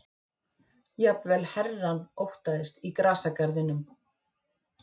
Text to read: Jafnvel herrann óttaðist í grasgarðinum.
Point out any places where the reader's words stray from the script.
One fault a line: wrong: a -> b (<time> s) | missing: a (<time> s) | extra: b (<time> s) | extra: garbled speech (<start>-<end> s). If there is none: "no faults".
no faults